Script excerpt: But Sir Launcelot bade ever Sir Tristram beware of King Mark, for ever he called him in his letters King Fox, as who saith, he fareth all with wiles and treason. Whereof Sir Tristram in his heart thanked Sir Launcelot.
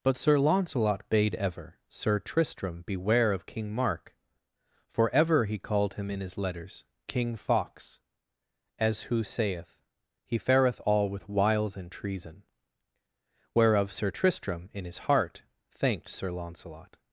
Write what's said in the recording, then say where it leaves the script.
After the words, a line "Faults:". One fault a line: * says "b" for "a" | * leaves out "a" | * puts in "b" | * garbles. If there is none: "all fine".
But Sir Launcelot bade ever Sir Tristram beware of King Mark, for ever he called him in his letters King Fox, as who saith, he fareth all with wiles and treason. Whereof Sir Tristram in his heart thanked Sir Launcelot.
Faults:
all fine